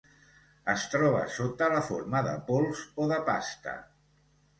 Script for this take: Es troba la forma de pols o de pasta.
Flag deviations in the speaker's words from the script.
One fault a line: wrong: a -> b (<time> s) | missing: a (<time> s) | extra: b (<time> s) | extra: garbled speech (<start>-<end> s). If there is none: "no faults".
extra: sota (1.4 s)